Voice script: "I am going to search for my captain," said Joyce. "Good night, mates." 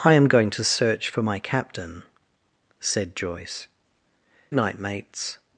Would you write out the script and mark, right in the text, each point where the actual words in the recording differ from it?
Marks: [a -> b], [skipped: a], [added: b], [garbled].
"I am going to search for my captain," said Joyce. [skipped: "Good] night, mates."